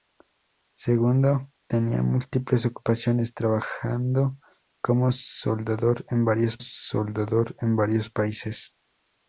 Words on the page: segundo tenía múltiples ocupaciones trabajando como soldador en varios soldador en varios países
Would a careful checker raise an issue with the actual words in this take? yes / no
no